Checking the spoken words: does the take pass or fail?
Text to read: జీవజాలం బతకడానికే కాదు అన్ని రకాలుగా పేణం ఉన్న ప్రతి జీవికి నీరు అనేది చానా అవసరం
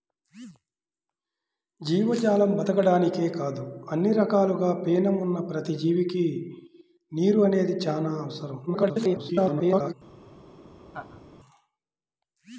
fail